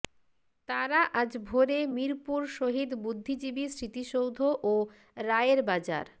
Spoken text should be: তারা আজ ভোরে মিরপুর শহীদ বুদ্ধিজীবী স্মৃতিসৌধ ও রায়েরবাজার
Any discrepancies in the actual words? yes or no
no